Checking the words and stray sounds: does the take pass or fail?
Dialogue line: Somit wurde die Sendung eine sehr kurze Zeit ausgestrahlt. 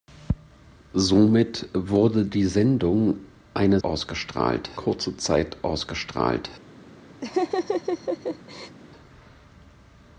fail